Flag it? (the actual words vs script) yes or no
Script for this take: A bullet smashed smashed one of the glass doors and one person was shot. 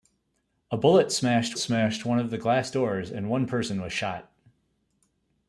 no